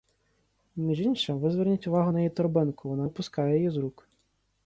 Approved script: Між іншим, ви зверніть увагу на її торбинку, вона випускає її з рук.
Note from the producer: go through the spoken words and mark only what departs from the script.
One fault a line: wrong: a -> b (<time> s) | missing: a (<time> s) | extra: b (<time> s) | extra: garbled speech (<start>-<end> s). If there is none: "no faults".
no faults